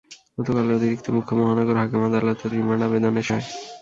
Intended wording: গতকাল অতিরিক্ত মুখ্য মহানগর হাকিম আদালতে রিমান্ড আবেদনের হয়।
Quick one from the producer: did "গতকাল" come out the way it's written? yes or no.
yes